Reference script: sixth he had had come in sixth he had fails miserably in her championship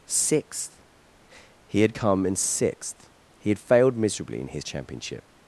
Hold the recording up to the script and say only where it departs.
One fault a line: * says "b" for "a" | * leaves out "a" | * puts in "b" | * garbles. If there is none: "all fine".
* leaves out "had"
* says "failed" for "fails"
* says "his" for "her"